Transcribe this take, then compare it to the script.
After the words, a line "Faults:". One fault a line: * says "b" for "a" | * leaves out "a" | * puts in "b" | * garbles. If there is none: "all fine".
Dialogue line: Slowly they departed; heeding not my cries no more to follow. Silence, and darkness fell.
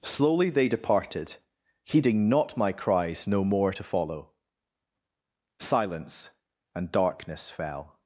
Slowly they departed; heeding not my cries no more to follow. Silence, and darkness fell.
Faults:
all fine